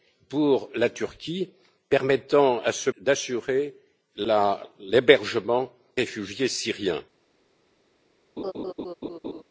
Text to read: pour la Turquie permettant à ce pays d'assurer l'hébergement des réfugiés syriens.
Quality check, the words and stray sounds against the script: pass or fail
fail